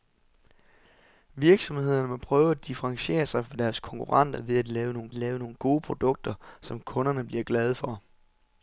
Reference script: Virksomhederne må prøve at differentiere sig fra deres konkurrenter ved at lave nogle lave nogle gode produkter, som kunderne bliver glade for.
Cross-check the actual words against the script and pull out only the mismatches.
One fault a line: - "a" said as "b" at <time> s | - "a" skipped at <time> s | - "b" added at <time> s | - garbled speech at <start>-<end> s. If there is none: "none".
none